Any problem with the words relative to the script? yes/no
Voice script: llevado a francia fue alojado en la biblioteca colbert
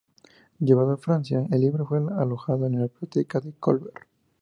yes